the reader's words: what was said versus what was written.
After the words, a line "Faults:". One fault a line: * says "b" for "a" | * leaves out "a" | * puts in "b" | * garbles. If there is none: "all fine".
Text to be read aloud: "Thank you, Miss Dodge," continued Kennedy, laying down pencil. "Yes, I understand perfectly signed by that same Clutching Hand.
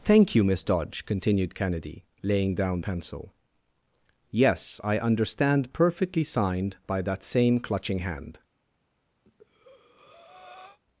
"Thank you, Miss Dodge," continued Kennedy, laying down pencil. "Yes, I understand perfectly signed by that same Clutching Hand.
Faults:
all fine